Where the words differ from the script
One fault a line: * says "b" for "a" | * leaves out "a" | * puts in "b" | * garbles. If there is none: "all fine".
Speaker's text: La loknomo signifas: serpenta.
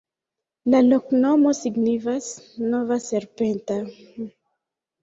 * puts in "nova"